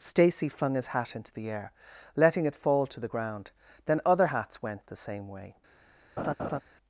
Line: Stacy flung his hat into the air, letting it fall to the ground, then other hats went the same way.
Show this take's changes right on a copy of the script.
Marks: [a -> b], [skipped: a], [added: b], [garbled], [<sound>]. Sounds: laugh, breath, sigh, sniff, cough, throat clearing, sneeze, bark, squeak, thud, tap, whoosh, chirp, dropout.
Stacy flung his hat into the air, letting it fall to the ground, then other hats went the same way. [laugh]